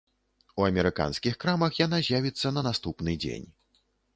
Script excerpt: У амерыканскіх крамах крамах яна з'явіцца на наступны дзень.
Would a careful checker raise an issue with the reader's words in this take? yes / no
yes